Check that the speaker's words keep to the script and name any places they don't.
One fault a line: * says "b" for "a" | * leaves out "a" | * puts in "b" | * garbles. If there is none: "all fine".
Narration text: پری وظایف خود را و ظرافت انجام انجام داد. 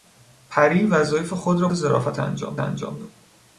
all fine